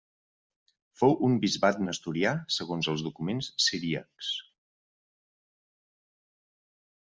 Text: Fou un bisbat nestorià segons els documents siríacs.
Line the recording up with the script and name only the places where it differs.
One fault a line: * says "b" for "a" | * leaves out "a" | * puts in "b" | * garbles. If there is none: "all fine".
all fine